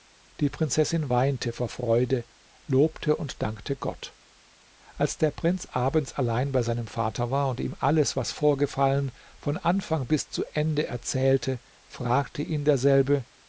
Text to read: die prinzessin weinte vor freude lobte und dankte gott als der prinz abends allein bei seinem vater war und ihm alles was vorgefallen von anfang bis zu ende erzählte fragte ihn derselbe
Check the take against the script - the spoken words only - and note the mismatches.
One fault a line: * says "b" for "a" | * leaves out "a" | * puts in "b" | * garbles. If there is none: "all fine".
all fine